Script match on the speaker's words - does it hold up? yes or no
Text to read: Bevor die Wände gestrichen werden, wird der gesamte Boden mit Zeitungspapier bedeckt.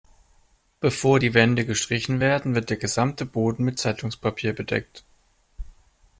yes